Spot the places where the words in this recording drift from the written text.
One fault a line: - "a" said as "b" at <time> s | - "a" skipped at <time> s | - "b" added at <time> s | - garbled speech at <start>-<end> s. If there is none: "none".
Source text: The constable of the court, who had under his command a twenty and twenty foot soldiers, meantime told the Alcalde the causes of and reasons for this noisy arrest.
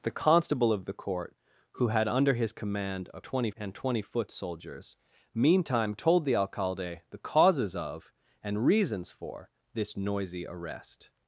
none